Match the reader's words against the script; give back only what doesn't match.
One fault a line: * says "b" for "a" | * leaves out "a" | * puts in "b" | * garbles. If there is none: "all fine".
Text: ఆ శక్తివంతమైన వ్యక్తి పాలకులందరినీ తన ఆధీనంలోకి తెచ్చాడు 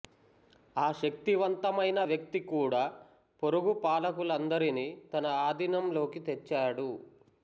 * puts in "కూడా పొరుగు"